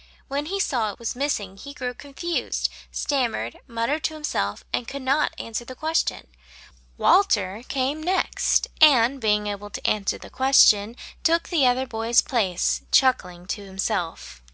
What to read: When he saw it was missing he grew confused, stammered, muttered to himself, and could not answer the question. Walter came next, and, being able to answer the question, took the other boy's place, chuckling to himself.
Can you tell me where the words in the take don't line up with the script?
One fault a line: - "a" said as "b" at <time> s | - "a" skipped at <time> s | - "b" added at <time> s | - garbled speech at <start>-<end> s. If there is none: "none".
none